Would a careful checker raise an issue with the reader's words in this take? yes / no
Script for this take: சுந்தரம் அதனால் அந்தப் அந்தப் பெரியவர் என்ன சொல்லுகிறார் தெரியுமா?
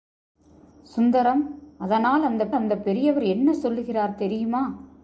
no